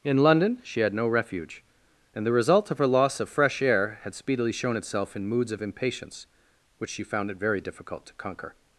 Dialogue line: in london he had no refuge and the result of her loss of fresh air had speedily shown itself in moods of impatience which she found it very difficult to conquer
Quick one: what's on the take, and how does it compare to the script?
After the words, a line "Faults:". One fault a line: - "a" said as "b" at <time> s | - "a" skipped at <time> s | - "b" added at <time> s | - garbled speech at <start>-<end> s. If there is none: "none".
in london she had no refuge and the result of her loss of fresh air had speedily shown itself in moods of impatience which she found it very difficult to conquer
Faults:
- "he" said as "she" at 0.6 s